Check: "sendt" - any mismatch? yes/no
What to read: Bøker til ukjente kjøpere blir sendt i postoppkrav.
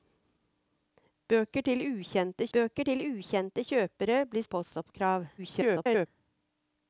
yes